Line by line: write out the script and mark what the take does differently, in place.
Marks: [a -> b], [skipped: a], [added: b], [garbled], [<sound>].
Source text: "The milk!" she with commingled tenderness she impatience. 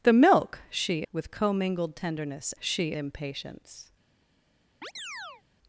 "The milk!" she with commingled tenderness she impatience. [chirp]